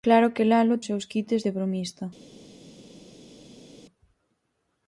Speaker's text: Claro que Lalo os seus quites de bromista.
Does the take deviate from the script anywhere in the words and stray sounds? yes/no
no